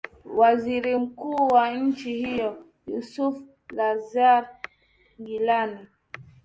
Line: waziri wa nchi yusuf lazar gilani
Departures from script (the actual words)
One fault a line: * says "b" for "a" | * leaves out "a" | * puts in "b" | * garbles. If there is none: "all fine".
* puts in "mkuu"
* puts in "hiyo"